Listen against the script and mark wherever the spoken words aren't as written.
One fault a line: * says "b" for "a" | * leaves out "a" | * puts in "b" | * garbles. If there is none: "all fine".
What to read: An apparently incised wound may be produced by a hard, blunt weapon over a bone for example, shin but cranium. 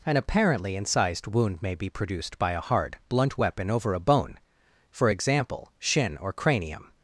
* says "or" for "but"